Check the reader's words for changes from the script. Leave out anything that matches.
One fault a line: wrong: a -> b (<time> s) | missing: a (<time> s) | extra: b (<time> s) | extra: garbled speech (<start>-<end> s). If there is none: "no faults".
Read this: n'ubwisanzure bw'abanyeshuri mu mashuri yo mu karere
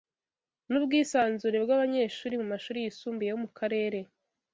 extra: yisumbuye (2.8 s)